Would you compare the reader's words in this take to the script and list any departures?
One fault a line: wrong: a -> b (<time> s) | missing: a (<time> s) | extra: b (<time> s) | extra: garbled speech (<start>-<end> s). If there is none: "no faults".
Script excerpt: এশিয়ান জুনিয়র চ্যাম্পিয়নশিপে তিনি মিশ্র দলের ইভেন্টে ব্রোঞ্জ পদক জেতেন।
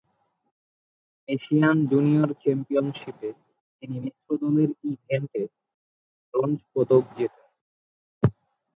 no faults